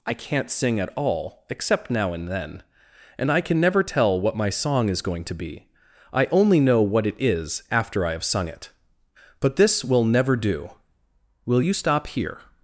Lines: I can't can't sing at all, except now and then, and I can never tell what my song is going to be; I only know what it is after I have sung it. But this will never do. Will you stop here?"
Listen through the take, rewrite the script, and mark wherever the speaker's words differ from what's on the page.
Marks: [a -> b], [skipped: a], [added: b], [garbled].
I can't [skipped: can't] sing at all, except now and then, and I can never tell what my song is going to be; I only know what it is after I have sung it. But this will never do. Will you stop here?"